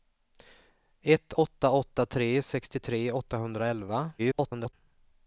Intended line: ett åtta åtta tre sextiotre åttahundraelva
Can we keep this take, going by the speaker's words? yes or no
no